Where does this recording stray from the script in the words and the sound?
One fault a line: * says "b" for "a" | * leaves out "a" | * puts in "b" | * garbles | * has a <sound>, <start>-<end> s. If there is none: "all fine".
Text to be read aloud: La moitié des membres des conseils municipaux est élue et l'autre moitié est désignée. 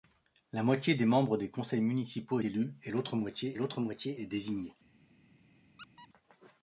* leaves out "est"
* puts in "l'autre moitié"
* has a squeak, 5.8-6.1 s